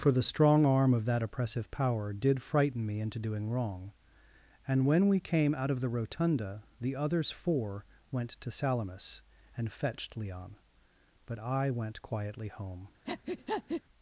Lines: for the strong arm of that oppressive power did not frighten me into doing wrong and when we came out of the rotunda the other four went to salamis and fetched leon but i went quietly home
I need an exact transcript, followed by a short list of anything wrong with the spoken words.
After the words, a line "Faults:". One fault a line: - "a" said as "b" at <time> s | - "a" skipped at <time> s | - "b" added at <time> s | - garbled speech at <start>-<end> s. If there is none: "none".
for the strong arm of that oppressive power did frighten me into doing wrong and when we came out of the rotunda the others four went to salamis and fetched leon but i went quietly home
Faults:
- "not" skipped at 2.4 s
- "other" said as "others" at 7.0 s